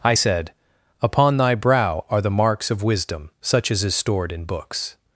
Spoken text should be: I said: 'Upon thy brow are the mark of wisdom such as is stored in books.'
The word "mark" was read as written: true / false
false